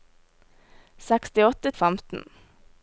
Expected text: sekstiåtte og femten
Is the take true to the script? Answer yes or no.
yes